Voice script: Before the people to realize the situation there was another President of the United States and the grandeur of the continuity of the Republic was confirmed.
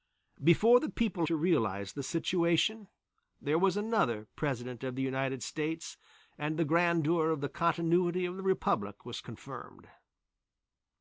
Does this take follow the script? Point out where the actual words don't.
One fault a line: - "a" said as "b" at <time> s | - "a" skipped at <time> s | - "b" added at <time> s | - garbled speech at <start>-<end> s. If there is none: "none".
none